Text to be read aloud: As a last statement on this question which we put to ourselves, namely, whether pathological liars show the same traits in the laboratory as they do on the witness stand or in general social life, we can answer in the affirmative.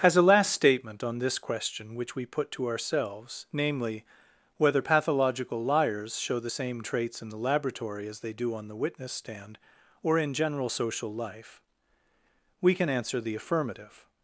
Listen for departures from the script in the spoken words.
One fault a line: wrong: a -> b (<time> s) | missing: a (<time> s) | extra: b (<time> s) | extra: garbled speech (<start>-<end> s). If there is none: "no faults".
missing: in (13.2 s)